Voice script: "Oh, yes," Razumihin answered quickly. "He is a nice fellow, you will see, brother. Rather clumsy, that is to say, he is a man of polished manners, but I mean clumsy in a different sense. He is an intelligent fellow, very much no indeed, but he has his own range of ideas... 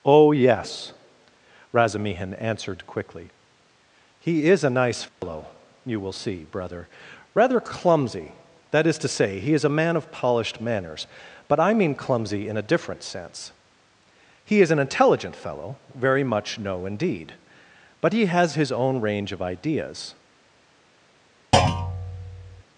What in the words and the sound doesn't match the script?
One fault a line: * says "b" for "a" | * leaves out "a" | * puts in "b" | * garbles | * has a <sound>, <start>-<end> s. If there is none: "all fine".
* has a dropout, 5.1-5.2 s
* has a thud, 21.5-22.6 s